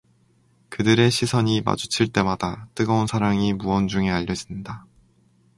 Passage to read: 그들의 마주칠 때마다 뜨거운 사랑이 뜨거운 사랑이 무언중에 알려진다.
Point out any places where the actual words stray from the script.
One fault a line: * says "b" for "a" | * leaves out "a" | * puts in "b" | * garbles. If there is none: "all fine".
* puts in "시선이"
* leaves out "뜨거운 사랑이"